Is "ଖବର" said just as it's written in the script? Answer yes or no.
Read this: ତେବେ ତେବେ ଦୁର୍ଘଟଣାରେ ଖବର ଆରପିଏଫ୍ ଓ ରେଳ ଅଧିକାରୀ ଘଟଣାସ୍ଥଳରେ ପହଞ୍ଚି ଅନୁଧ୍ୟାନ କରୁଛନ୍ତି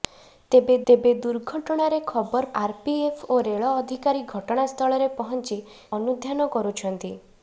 yes